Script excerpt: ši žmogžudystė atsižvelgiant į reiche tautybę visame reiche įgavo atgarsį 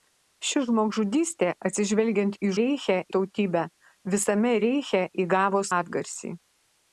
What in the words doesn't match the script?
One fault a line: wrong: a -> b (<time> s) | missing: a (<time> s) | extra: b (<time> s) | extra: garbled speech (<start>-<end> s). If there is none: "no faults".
no faults